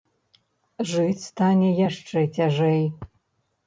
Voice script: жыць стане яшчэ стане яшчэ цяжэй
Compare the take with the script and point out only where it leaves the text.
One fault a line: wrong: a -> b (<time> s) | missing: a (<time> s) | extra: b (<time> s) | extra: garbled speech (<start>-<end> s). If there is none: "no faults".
missing: стане яшчэ (2.3 s)